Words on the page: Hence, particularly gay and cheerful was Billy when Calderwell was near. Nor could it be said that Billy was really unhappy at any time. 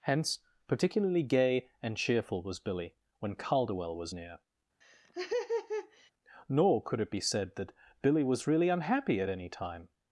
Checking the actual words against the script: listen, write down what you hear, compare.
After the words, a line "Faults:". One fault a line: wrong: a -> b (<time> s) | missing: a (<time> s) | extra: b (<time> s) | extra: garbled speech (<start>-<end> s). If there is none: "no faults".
Hence, particularly gay and cheerful was Billy when Calderwell was near. Nor could it be said that Billy was really unhappy at any time.
Faults:
no faults